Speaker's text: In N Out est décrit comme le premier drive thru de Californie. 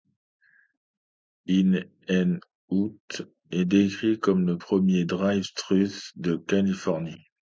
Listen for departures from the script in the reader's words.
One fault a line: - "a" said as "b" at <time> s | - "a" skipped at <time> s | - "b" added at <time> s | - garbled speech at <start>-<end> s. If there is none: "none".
none